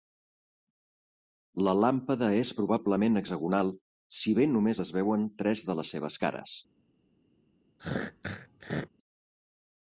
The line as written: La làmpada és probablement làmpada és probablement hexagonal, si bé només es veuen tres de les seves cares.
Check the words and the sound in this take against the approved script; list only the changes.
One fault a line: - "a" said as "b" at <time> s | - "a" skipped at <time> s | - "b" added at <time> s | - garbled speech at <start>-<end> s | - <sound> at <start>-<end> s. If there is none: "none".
- "làmpada és probablement" skipped at 3.2 s
- throat clearing at 7.8-8.9 s